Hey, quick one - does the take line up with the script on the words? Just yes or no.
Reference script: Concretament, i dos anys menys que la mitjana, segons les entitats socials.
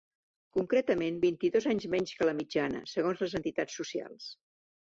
no